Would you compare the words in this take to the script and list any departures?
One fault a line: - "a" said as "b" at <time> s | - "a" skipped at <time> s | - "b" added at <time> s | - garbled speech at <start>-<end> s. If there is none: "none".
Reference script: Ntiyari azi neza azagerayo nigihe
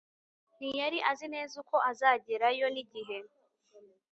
- "uko" added at 1.6 s